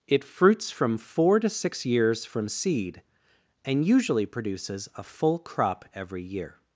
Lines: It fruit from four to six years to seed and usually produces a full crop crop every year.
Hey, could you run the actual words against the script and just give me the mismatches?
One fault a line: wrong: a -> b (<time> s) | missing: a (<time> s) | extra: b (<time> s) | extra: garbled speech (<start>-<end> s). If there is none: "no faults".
wrong: fruit -> fruits (0.2 s)
wrong: to -> from (2.2 s)
missing: crop (5.8 s)